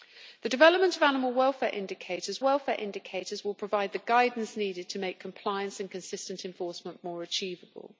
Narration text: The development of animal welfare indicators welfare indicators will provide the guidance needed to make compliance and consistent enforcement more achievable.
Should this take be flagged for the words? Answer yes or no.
no